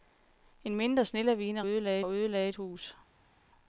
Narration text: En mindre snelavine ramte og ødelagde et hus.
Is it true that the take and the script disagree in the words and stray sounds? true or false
true